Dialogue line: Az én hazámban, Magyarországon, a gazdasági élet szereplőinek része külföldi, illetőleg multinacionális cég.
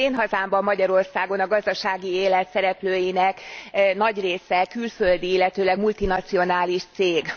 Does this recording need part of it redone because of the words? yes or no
yes